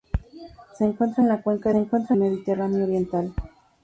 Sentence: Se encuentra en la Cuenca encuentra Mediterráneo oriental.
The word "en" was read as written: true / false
true